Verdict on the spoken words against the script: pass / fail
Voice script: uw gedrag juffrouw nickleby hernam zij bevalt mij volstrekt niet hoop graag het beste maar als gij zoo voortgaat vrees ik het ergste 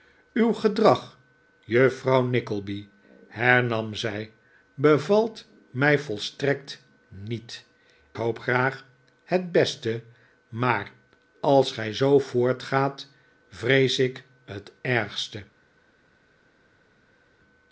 pass